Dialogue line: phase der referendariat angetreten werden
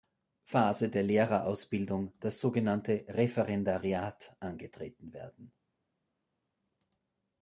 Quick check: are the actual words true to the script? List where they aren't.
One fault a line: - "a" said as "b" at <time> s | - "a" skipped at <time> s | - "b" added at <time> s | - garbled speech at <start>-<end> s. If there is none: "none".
- "lehrerausbildung das sogenannte" added at 1.0 s